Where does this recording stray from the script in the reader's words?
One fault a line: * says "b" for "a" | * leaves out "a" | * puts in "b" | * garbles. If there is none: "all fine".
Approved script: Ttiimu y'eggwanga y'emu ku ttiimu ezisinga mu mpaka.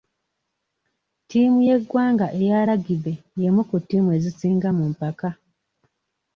* puts in "eya lagibe"